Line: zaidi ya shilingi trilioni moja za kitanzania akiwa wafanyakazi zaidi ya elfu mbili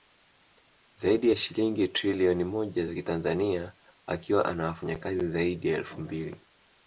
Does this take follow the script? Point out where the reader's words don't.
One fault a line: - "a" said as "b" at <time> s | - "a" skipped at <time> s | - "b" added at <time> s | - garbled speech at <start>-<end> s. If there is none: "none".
- "ana" added at 4.4 s